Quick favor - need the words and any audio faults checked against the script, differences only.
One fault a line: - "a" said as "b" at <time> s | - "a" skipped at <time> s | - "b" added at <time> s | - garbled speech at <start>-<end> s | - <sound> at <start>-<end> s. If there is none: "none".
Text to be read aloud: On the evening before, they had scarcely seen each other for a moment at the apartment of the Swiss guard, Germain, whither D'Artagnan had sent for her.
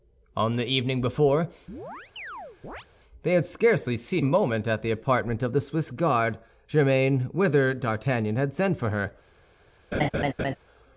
- chirp at 1.7-2.9 s
- "each other for" skipped at 4.2 s
- laugh at 9.9-10.6 s